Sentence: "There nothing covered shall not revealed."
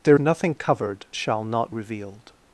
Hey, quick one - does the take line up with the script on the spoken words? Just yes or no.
yes